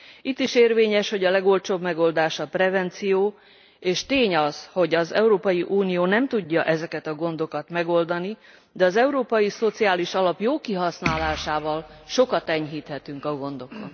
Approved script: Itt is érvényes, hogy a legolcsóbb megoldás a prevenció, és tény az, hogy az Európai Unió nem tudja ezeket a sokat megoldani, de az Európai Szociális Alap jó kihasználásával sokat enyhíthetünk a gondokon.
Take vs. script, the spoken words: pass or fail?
fail